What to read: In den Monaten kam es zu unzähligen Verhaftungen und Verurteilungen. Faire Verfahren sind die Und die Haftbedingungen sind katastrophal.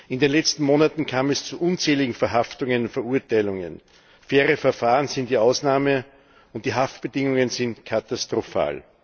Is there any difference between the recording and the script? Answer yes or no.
yes